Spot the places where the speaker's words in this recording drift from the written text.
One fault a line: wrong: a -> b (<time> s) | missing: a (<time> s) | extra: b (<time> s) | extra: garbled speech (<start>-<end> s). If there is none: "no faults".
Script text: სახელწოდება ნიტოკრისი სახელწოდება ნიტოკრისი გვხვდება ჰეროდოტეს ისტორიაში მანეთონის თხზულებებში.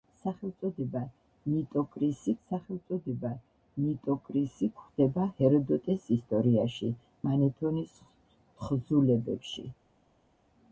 no faults